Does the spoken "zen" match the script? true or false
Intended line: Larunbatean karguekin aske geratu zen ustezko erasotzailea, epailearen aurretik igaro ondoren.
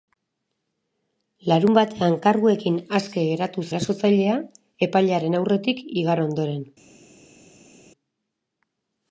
false